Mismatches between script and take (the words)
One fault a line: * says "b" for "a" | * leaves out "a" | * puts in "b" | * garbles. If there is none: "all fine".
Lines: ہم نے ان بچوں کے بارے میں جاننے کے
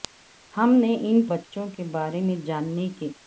all fine